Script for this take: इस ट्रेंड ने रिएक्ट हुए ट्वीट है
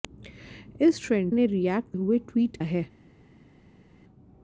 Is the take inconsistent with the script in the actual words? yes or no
no